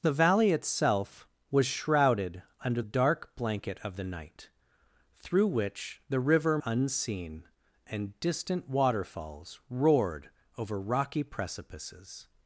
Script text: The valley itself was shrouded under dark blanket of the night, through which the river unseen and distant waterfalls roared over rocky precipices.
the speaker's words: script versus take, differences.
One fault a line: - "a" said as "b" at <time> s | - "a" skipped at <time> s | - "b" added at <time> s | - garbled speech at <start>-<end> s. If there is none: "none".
none